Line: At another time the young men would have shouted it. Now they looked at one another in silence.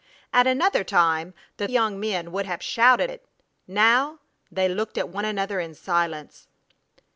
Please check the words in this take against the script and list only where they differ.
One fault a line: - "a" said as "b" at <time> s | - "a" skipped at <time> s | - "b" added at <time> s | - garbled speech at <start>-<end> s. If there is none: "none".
none